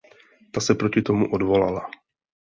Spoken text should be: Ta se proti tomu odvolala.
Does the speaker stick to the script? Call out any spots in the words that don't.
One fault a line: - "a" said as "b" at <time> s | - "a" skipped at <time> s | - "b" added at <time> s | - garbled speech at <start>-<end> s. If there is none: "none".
none